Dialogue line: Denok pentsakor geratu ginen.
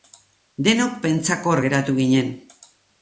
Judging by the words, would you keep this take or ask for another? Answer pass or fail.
pass